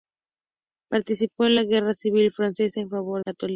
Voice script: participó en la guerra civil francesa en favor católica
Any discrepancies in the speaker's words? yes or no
no